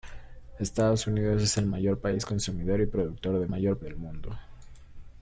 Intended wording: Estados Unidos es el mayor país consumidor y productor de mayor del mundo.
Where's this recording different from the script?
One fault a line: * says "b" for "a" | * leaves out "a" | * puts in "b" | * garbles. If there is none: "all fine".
all fine